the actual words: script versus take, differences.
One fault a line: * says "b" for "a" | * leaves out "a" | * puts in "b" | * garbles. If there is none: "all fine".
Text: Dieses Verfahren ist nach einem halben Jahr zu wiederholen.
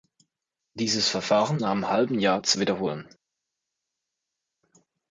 * leaves out "ist"